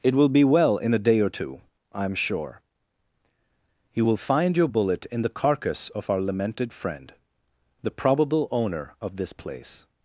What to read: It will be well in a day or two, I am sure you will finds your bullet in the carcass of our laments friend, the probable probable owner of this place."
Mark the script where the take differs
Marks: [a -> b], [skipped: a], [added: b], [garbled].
It will be well in a day or two, I am sure you will [finds -> find] your bullet in the carcass of our [laments -> lamented] friend, the probable [skipped: probable] owner of this place."